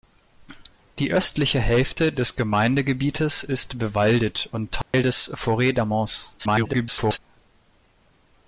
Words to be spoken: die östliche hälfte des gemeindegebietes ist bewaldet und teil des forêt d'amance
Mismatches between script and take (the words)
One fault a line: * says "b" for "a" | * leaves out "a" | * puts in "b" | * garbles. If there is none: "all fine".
* garbles